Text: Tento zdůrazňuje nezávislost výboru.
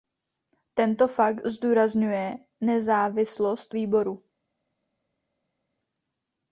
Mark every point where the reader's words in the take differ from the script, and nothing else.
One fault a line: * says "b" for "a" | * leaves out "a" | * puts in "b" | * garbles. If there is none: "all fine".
* puts in "fakt"